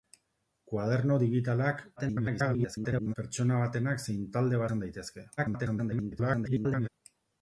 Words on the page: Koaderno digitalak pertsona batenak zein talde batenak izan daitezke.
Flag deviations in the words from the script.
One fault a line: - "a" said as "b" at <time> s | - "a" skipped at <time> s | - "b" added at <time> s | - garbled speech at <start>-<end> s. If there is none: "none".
- garbled speech at 2.0-3.1 s
- "batenak" skipped at 4.6 s
- garbled speech at 5.4-6.9 s